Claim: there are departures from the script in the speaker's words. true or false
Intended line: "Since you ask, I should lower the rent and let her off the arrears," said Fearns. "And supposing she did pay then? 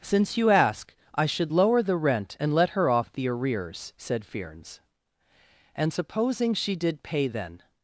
false